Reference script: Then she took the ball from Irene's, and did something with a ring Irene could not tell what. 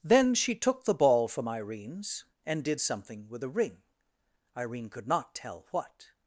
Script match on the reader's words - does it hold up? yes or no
yes